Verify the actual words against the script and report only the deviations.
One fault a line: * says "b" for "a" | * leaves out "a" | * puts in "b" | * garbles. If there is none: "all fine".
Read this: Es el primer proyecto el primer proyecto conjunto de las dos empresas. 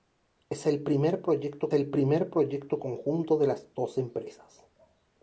all fine